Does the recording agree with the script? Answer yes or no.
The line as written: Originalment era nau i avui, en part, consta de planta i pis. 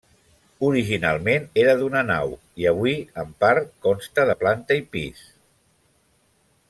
no